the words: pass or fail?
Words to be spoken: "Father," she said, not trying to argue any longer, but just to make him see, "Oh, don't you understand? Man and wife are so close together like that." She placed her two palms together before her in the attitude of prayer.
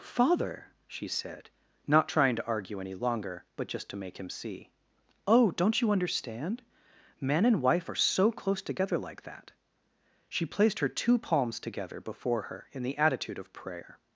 pass